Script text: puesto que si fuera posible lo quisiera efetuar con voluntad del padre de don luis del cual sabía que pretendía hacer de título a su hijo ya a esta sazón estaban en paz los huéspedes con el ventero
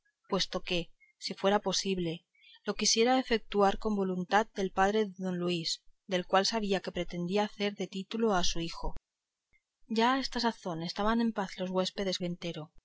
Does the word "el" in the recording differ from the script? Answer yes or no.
yes